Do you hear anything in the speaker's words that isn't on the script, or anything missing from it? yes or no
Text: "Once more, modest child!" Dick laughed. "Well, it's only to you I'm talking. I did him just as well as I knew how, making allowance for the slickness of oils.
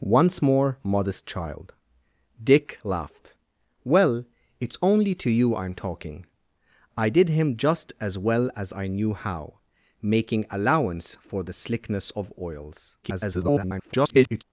yes